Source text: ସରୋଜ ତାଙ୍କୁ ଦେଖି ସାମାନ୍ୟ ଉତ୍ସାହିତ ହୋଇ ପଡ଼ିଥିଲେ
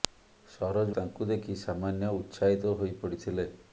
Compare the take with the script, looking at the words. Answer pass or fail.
pass